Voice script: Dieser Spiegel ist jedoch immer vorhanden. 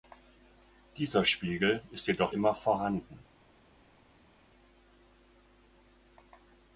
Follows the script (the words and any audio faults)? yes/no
yes